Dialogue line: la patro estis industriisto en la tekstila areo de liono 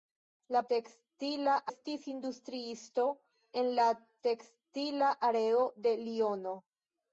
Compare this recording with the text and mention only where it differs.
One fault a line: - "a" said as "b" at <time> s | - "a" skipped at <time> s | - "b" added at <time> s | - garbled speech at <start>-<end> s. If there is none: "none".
- "patro" said as "tekstila" at 0.7 s